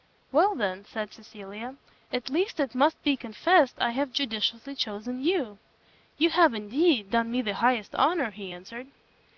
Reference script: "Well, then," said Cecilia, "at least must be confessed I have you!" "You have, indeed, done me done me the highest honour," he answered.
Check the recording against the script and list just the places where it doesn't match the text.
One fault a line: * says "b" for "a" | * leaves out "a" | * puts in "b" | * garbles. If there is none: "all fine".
* puts in "it"
* puts in "judiciously chosen"
* leaves out "done me"